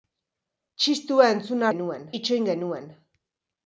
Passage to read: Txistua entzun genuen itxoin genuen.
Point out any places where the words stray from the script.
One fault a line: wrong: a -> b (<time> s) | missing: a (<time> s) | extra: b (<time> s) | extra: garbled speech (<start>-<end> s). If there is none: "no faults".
no faults